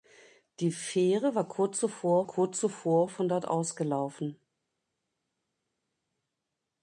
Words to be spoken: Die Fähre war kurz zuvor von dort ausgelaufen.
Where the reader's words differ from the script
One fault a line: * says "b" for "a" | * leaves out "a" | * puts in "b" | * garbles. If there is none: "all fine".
* puts in "kurz zuvor"